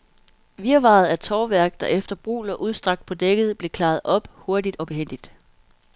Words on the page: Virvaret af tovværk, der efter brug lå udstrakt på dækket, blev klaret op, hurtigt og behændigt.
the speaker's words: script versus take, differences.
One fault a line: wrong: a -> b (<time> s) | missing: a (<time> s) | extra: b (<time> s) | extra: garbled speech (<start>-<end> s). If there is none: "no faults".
no faults